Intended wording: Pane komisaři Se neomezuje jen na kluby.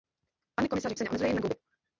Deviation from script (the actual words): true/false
false